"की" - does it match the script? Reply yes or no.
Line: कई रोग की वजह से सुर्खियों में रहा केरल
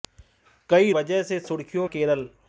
no